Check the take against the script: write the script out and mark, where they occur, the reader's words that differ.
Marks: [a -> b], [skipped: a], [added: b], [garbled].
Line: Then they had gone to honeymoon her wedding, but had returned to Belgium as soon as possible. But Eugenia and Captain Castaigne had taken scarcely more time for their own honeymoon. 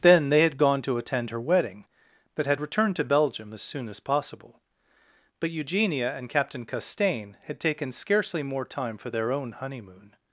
Then they had gone to [honeymoon -> attend] her wedding, but had returned to Belgium as soon as possible. But Eugenia and Captain Castaigne had taken scarcely more time for their own honeymoon.